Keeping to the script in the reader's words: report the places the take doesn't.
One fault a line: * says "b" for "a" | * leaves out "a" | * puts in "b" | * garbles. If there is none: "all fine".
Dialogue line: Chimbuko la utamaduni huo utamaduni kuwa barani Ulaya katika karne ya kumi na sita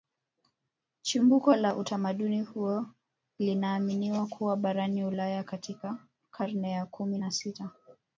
* says "linaaminiwa" for "utamaduni"